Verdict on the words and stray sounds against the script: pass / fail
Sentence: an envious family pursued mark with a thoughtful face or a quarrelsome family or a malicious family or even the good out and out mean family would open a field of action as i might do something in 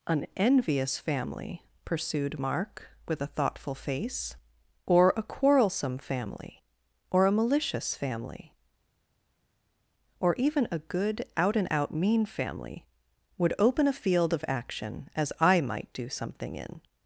fail